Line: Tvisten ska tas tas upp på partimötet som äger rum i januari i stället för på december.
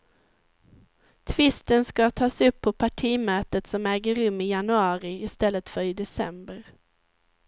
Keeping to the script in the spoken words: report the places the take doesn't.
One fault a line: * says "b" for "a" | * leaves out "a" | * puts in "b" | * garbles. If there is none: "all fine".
* leaves out "tas"
* says "i" for "på"